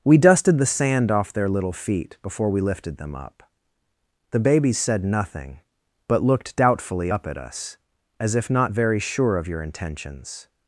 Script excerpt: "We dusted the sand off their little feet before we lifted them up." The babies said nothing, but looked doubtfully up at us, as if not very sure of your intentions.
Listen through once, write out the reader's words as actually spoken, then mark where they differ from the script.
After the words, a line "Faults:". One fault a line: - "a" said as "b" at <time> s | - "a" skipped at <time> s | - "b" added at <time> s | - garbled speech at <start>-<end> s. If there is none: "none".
"We dusted the sand off their little feet before we lifted them up." The babies said nothing, but looked doubtfully up at us, as if not very sure of your intentions.
Faults:
none